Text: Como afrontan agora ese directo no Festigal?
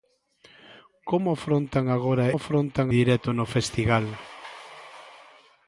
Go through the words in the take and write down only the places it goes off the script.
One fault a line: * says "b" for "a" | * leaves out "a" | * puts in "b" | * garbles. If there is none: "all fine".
* says "afrontan" for "ese"